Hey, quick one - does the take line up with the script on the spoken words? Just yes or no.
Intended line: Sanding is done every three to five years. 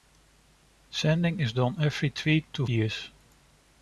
no